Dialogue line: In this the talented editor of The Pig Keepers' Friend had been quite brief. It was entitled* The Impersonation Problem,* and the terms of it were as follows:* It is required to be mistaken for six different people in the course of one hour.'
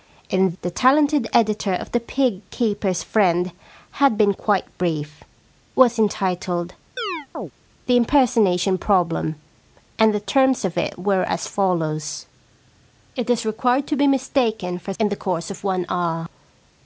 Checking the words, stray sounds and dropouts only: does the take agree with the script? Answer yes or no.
no